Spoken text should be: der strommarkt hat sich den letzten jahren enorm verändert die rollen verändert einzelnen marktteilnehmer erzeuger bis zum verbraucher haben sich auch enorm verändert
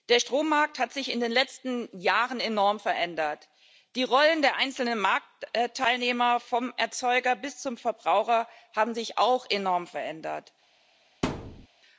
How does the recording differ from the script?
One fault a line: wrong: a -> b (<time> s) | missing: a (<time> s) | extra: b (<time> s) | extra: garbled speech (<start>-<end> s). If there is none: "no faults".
extra: in (1.1 s)
wrong: verändert -> der (4.4 s)
extra: vom (6.4 s)